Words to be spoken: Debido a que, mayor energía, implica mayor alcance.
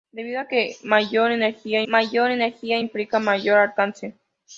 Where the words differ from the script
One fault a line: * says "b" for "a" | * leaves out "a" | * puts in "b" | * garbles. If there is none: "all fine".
* puts in "mayor energía"